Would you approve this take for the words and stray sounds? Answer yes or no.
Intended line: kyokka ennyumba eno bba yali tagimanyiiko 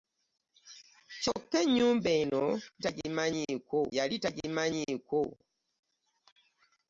no